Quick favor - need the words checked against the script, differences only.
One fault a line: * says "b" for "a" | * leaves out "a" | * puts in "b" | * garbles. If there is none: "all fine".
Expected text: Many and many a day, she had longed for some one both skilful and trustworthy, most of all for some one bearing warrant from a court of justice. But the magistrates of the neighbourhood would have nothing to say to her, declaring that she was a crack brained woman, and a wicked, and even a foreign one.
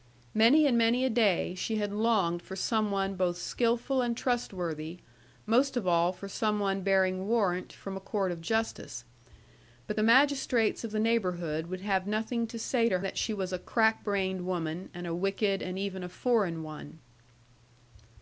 * leaves out "her declaring"